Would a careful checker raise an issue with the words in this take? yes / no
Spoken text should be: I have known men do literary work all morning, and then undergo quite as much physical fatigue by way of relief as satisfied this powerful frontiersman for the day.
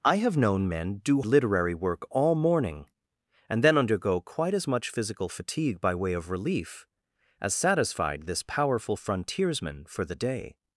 no